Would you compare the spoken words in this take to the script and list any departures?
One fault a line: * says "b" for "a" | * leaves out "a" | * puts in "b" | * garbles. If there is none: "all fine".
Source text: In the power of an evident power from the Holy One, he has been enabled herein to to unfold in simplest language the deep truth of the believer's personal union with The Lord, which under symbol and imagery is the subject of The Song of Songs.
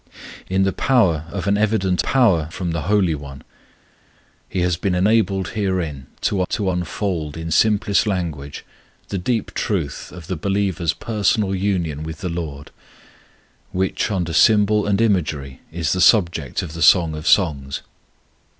all fine